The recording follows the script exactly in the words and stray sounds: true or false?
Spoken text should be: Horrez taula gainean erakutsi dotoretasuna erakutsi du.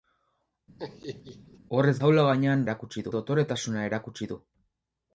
false